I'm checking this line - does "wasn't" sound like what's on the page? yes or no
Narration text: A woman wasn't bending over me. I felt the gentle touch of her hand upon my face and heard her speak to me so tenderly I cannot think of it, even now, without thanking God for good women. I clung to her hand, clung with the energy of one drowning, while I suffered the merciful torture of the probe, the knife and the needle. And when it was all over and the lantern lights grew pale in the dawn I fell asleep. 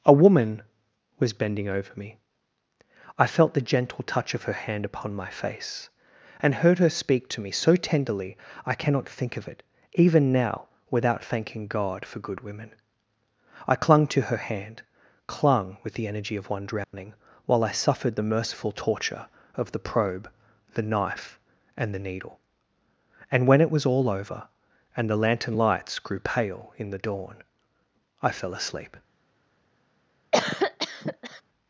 no